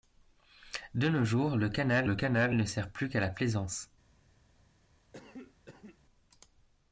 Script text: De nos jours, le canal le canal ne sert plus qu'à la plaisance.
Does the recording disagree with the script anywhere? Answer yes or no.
no